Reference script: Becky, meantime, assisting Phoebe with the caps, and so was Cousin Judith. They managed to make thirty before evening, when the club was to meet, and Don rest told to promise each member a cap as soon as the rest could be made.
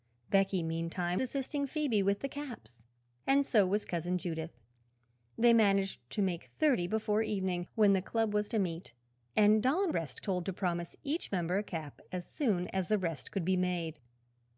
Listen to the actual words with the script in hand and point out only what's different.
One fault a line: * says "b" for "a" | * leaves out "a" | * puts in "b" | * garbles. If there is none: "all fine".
all fine